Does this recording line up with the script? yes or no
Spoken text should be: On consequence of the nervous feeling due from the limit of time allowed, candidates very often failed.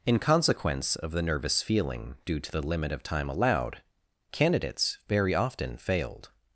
no